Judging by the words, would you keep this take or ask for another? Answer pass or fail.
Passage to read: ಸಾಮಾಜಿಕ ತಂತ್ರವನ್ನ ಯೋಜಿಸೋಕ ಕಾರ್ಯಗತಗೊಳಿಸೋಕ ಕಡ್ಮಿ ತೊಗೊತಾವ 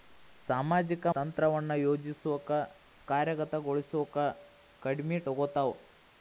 pass